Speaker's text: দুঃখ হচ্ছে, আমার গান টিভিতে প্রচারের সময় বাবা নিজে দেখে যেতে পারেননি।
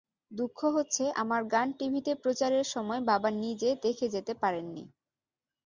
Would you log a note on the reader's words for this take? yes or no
no